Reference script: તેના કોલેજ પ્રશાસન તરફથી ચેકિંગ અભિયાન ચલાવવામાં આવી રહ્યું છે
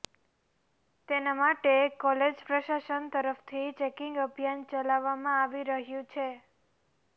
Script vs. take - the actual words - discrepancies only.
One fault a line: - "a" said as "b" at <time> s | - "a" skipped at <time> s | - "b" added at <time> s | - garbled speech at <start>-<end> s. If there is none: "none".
- "માટે" added at 1.4 s